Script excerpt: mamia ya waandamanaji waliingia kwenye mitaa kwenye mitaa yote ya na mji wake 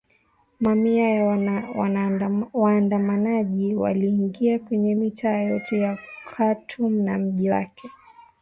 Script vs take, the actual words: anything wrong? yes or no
yes